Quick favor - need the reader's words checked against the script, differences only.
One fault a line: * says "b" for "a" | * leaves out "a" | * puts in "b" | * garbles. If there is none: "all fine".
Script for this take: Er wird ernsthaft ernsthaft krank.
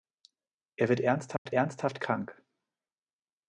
all fine